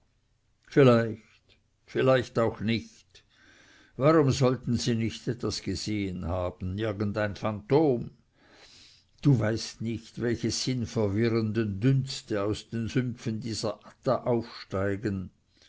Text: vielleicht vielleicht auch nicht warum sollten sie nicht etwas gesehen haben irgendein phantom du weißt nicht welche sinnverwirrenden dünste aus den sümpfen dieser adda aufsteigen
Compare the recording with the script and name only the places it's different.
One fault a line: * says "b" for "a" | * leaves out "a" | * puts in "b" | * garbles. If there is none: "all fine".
all fine